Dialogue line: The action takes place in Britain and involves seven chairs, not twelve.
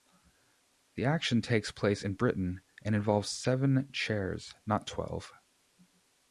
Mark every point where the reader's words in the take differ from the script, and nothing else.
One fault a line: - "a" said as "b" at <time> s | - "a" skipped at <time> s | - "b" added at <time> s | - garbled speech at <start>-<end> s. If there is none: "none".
none